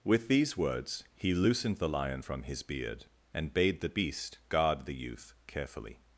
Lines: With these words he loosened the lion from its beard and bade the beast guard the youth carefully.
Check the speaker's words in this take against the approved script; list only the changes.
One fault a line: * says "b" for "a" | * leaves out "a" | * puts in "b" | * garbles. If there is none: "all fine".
* says "his" for "its"